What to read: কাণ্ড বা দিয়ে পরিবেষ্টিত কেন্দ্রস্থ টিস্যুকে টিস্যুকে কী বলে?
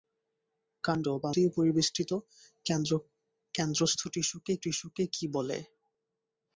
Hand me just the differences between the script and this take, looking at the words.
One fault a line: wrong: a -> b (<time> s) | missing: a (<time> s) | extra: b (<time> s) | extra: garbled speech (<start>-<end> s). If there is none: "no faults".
no faults